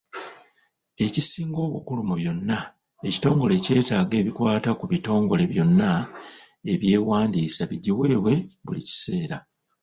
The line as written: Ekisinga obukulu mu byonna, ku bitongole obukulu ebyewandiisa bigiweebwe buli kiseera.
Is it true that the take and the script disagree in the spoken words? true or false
true